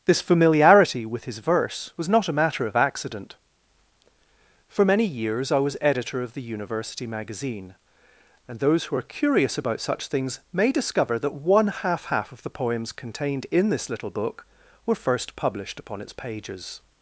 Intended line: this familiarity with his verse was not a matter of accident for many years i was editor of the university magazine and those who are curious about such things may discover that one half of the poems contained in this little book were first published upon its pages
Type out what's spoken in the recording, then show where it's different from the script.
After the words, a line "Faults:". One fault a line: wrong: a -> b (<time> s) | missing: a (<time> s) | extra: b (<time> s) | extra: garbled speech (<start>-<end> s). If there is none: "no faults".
this familiarity with his verse was not a matter of accident for many years i was editor of the university magazine and those who are curious about such things may discover that one half half of the poems contained in this little book were first published upon its pages
Faults:
extra: half (12.1 s)